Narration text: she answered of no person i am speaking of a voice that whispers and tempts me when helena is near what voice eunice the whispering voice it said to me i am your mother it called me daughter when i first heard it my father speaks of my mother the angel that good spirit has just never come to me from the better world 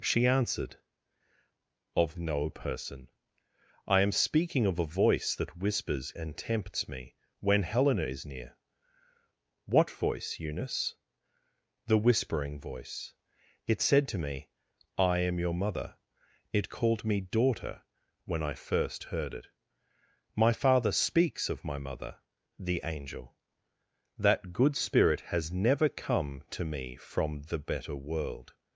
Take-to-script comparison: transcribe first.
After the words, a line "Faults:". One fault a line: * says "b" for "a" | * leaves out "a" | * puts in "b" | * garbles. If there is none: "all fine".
she answered of no person i am speaking of a voice that whispers and tempts me when helena is near what voice eunice the whispering voice it said to me i am your mother it called me daughter when i first heard it my father speaks of my mother the angel that good spirit has never come to me from the better world
Faults:
* leaves out "just"